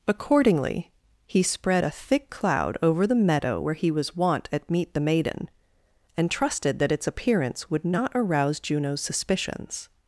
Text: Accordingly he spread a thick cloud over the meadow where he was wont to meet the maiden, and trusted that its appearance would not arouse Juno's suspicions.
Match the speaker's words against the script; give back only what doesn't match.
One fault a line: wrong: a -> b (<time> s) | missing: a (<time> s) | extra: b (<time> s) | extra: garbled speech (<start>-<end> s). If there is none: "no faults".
wrong: to -> at (4.5 s)